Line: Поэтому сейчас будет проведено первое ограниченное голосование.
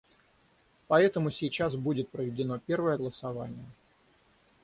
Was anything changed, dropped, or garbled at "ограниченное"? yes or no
yes